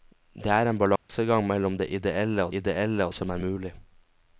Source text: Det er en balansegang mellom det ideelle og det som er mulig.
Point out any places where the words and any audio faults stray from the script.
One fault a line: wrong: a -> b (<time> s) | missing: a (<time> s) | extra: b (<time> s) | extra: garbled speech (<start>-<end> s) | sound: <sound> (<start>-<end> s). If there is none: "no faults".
sound: dropout (1.0-1.1 s)
wrong: det -> ideelle (2.5 s)